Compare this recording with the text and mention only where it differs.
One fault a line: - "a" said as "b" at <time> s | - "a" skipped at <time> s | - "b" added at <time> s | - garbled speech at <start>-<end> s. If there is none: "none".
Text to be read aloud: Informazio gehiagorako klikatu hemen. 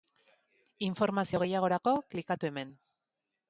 none